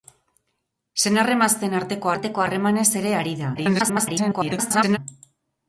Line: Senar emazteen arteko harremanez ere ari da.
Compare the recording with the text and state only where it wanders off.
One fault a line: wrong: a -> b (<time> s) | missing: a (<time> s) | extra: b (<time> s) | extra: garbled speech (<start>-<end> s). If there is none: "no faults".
extra: arteko (2.1 s)
extra: garbled speech (3.6-5.0 s)